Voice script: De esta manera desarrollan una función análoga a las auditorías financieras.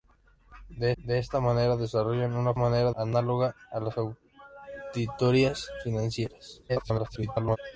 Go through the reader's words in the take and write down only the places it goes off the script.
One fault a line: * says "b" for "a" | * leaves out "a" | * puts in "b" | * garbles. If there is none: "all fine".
* puts in "de"
* says "manera" for "función"
* garbles